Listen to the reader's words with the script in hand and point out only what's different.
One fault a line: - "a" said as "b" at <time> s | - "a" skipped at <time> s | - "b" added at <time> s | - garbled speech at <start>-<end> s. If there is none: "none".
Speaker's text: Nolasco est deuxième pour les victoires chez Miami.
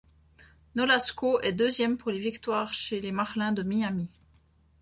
- "les Marlins de" added at 3.0 s